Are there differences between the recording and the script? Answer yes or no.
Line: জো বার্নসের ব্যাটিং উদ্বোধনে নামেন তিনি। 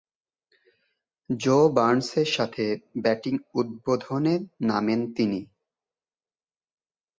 yes